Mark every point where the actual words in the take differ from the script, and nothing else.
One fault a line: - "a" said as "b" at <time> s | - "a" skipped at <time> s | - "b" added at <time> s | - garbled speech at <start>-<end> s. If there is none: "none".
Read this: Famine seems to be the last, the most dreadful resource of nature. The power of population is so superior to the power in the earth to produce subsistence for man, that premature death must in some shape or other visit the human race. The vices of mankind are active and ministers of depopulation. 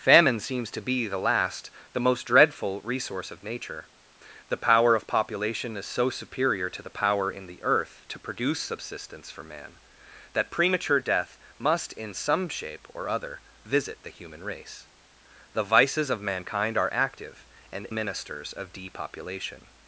none